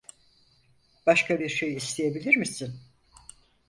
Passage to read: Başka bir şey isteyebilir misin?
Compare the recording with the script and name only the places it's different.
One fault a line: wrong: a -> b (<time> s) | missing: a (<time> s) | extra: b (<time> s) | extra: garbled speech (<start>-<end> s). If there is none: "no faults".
no faults